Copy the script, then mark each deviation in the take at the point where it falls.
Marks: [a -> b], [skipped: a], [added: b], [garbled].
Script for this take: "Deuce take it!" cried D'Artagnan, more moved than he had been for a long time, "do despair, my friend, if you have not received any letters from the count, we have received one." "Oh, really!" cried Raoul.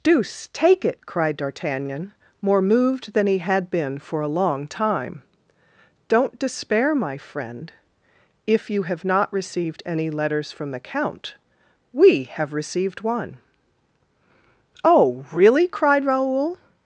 "Deuce take it!" cried D'Artagnan, more moved than he had been for a long time, ["do -> don't] despair, my friend, if you have not received any letters from the count, we have received one." "Oh, really!" cried Raoul.